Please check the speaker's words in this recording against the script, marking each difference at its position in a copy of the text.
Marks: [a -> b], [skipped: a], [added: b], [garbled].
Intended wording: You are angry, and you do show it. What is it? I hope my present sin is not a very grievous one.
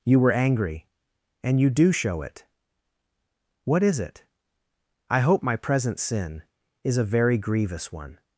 You [are -> were] angry, and you do show it. What is it? I hope my present sin is [skipped: not] a very grievous one.